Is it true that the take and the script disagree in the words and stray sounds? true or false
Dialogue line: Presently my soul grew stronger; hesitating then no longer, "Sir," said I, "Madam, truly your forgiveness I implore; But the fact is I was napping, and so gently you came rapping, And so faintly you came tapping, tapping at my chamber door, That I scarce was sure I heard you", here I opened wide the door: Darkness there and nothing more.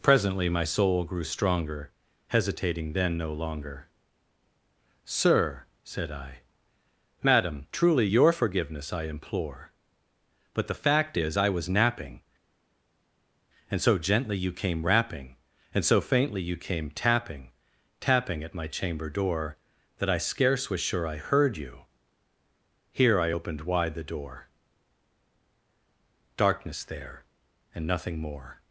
false